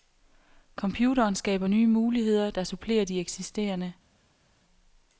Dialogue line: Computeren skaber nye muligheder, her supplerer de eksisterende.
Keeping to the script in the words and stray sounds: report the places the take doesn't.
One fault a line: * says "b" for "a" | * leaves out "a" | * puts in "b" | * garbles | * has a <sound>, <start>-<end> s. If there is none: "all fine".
* says "der" for "her"